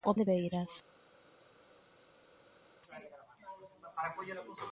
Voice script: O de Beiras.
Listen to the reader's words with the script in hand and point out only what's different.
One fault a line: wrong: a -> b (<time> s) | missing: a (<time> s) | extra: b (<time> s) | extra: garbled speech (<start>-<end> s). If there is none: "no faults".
no faults